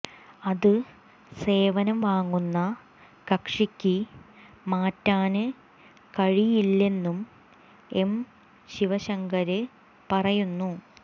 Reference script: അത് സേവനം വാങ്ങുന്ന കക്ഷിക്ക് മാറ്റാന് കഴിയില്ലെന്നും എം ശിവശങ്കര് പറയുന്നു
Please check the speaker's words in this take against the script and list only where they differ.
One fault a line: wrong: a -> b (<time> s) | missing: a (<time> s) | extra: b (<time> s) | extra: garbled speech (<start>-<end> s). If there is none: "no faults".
no faults